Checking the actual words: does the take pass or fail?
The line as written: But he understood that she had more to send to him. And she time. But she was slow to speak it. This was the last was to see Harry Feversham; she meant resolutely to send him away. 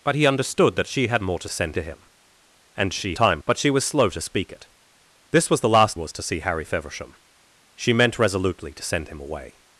pass